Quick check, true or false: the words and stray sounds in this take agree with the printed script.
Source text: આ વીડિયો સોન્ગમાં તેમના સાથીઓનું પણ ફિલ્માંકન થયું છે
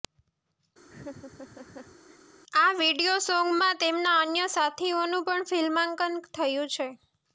false